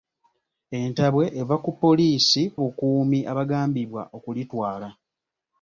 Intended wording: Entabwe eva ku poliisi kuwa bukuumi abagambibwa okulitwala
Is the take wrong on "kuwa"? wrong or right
wrong